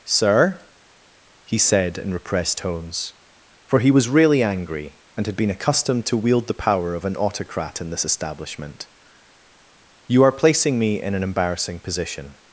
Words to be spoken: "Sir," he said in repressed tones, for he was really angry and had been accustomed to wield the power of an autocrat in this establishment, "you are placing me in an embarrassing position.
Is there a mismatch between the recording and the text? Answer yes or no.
no